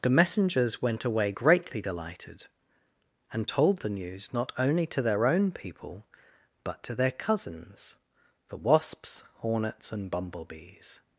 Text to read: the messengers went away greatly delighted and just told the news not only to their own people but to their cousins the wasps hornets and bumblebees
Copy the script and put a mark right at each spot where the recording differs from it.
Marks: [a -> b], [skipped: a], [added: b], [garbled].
the messengers went away greatly delighted and [skipped: just] told the news not only to their own people but to their cousins the wasps hornets and bumblebees